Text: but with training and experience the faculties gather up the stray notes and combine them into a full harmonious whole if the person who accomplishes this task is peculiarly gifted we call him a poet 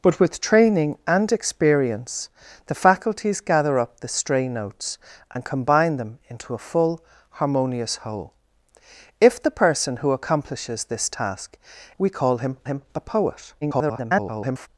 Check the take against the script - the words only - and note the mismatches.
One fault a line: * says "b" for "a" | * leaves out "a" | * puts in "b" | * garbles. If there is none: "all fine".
* leaves out "is peculiarly gifted"
* puts in "him"
* garbles